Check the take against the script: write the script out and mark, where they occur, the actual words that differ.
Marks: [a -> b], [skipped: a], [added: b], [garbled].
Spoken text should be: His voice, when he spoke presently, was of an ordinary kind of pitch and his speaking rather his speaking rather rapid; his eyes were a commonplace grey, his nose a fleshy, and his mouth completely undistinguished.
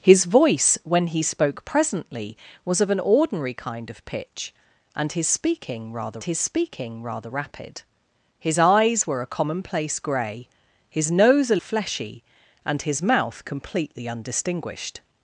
His voice, when he spoke presently, was of an ordinary kind of pitch and his speaking rather his speaking rather rapid; his eyes were a commonplace grey, his nose a fleshy, and his mouth completely undistinguished.